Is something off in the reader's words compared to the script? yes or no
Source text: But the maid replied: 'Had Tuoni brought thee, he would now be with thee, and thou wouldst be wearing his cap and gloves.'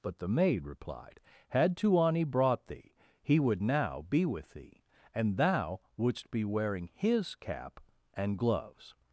no